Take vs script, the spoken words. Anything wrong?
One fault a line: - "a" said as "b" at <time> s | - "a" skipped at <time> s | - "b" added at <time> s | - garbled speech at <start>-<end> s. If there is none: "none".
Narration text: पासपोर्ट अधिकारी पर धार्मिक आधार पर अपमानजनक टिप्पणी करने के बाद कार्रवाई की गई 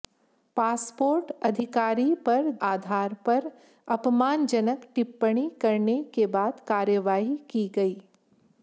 - "धार्मिक" skipped at 2.5 s